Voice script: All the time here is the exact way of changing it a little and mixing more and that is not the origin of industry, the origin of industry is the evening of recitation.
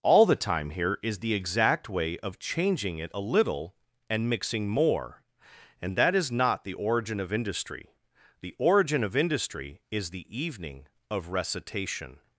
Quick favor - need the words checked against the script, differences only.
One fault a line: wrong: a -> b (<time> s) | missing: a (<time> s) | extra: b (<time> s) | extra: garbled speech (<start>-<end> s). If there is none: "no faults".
no faults